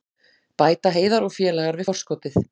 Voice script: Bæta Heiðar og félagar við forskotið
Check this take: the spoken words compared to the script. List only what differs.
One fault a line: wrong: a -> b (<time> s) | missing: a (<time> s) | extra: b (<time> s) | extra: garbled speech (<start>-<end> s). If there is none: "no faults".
no faults